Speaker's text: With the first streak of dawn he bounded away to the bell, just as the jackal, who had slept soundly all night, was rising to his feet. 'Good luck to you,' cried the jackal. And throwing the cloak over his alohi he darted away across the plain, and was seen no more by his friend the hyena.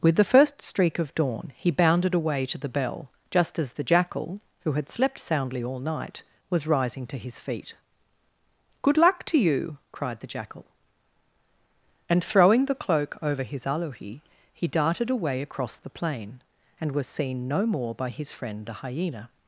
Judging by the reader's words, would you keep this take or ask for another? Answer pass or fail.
pass